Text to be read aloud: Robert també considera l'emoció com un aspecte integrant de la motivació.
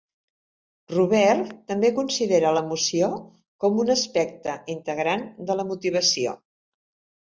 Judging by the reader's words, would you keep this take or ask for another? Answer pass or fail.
pass